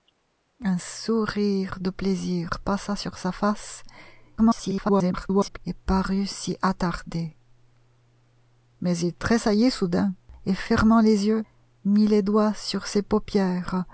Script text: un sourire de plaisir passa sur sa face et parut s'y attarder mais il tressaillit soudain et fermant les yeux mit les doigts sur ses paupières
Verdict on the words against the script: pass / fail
fail